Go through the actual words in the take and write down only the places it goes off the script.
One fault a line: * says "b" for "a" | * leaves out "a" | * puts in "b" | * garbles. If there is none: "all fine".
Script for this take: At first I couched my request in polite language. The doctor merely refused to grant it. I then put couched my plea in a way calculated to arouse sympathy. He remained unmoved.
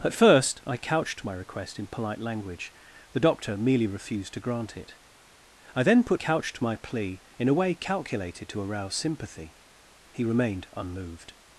all fine